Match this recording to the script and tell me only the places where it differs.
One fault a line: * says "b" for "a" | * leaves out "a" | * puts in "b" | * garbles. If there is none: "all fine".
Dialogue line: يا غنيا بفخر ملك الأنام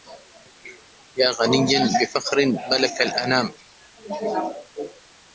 all fine